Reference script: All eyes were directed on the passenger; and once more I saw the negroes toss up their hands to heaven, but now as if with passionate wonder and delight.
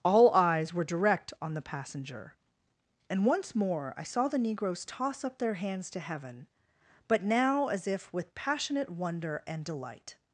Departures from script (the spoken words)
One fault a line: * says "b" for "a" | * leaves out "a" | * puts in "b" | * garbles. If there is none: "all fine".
* says "direct" for "directed"